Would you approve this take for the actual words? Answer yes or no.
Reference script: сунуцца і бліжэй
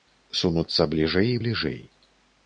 no